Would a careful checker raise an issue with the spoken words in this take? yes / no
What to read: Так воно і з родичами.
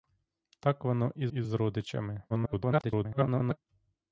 yes